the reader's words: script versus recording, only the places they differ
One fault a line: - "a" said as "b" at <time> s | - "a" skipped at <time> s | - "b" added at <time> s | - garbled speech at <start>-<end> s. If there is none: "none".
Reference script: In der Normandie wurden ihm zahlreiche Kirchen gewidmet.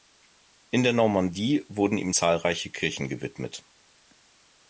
none